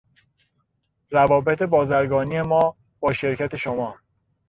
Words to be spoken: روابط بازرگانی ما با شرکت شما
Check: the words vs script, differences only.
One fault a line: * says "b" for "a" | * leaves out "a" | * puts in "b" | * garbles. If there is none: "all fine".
all fine